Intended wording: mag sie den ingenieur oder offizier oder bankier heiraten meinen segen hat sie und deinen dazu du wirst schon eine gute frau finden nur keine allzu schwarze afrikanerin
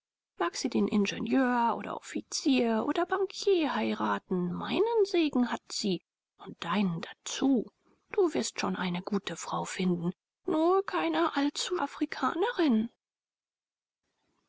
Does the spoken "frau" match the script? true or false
true